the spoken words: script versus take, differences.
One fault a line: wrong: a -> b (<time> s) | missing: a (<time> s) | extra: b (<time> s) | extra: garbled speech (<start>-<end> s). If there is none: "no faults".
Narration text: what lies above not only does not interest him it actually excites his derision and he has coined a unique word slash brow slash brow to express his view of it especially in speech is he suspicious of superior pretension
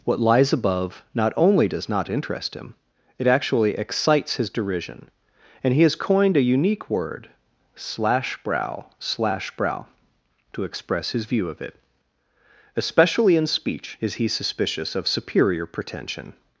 no faults